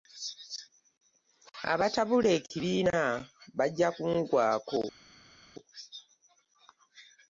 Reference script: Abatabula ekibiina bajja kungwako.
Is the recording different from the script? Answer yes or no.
no